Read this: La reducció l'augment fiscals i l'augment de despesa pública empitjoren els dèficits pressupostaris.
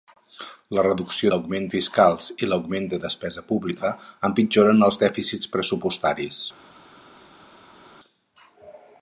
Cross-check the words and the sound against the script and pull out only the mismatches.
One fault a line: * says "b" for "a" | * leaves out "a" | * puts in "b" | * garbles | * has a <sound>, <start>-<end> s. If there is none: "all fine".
all fine